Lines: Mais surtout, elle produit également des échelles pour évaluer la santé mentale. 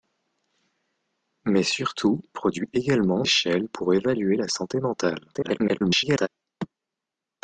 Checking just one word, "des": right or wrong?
wrong